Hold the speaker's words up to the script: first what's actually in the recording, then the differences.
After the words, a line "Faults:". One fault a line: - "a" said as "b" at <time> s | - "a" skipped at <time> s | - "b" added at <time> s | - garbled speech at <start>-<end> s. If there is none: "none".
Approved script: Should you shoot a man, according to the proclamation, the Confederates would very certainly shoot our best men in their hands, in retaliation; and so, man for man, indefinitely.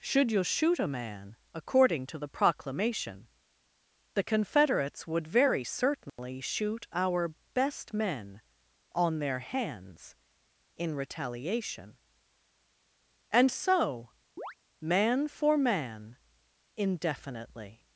Should you shoot a man, according to the proclamation, the Confederates would very certainly shoot our best men on their hands, in retaliation; and so, man for man, indefinitely.
Faults:
- "in" said as "on" at 8.9 s